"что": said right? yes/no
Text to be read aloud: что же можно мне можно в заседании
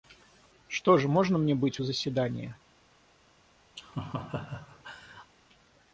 yes